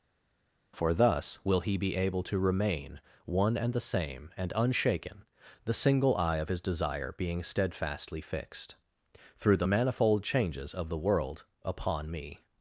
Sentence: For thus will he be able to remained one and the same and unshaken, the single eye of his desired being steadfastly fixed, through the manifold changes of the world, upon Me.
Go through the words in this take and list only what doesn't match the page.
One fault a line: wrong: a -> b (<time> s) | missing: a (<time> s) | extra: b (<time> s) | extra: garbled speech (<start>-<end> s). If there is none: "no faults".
wrong: remained -> remain (2.4 s)
wrong: desired -> desire (6.6 s)